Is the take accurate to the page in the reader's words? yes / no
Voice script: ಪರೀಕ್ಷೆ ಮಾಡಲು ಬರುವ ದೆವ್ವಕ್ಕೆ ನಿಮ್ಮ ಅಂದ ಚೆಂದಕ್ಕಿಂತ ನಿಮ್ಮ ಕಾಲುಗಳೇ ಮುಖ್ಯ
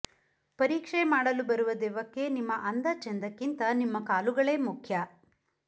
yes